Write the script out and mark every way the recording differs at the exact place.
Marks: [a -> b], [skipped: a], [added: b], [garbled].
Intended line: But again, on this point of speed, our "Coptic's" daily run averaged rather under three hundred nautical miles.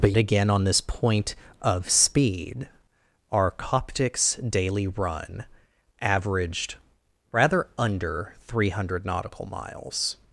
But again, on this point of speed, our "Coptic's" daily run averaged rather under three hundred nautical miles.